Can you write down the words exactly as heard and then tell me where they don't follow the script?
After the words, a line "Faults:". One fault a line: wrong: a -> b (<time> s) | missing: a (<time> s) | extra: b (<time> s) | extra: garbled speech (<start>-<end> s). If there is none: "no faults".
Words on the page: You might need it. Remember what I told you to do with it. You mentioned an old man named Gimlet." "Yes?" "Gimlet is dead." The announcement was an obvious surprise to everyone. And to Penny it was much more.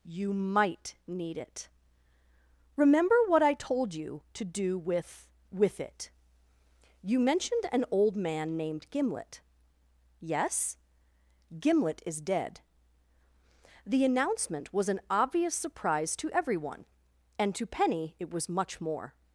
You might need it. Remember what I told you to do with with it. You mentioned an old man named Gimlet." "Yes?" "Gimlet is dead." The announcement was an obvious surprise to everyone. And to Penny it was much more.
Faults:
extra: with (5.5 s)